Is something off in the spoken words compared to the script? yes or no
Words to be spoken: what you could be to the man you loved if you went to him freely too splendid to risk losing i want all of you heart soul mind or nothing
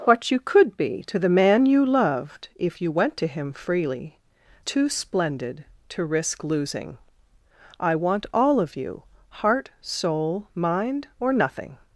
no